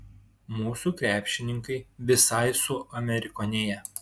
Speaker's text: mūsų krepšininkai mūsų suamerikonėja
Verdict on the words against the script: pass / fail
fail